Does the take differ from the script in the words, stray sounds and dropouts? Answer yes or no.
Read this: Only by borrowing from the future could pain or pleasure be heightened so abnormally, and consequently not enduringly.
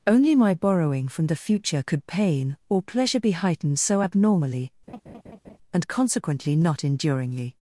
yes